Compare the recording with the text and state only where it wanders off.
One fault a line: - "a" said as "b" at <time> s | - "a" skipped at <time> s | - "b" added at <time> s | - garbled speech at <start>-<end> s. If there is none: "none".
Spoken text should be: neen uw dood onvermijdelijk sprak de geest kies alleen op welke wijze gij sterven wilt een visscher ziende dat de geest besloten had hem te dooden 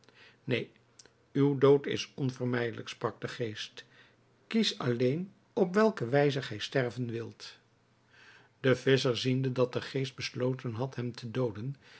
- "is" added at 1.9 s
- "een" said as "de" at 8.6 s